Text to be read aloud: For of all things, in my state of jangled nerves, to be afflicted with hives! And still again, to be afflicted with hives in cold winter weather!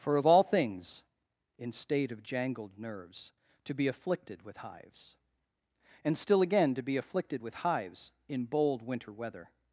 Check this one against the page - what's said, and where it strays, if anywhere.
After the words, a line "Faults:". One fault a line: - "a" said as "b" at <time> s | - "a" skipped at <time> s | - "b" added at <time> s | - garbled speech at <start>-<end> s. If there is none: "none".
For of all things, in state of jangled nerves, to be afflicted with hives! And still again, to be afflicted with hives in bold winter weather!
Faults:
- "my" skipped at 1.7 s
- "cold" said as "bold" at 8.4 s